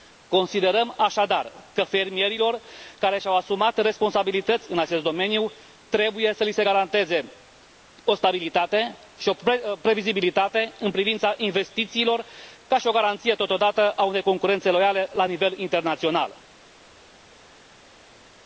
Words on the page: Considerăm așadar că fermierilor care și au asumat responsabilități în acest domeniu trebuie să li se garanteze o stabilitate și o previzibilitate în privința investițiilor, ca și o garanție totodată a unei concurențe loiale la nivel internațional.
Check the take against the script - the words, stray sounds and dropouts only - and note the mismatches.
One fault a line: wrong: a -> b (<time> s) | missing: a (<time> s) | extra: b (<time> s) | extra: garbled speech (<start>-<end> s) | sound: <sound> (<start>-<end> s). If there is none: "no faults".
no faults